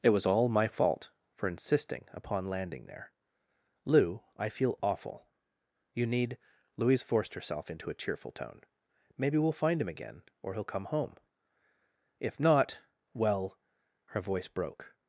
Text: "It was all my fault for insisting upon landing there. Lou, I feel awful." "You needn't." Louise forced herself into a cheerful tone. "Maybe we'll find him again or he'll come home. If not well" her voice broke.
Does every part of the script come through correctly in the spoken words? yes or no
no